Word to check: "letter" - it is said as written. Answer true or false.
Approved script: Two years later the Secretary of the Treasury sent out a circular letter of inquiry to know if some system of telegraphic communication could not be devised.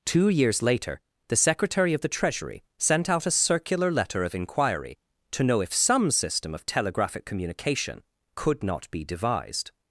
true